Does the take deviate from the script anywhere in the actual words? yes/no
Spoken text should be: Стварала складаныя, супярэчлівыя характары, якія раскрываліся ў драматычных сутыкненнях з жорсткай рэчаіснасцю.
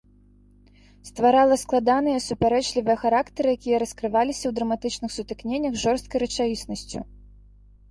no